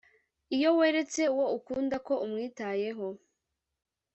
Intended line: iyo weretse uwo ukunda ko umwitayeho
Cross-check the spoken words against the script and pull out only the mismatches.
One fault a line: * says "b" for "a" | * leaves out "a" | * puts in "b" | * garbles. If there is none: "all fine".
all fine